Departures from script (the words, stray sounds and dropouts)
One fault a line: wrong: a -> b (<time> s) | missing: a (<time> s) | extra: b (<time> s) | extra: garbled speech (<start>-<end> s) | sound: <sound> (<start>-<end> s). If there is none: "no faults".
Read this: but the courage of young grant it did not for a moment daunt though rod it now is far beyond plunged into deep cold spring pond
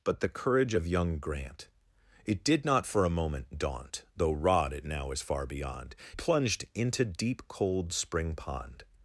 no faults